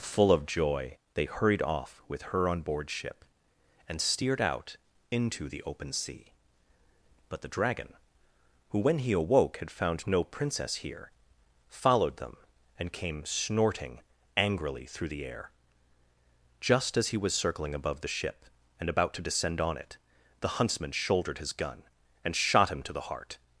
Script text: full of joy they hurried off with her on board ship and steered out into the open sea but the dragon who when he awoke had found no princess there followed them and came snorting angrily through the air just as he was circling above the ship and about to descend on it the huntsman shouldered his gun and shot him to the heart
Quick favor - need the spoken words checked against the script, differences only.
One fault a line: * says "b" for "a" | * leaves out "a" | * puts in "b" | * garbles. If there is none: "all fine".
* says "here" for "there"